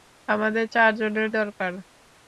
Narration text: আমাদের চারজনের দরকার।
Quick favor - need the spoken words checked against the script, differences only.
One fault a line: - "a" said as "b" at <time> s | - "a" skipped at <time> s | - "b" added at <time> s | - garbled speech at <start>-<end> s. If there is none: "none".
none